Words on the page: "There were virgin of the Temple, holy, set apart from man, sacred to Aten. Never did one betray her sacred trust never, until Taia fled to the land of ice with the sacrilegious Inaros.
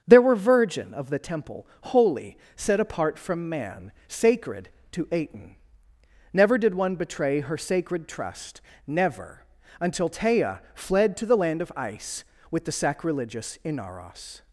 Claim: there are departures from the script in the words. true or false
false